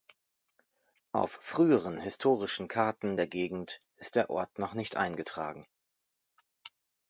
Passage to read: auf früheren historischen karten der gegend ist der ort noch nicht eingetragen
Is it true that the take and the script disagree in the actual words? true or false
false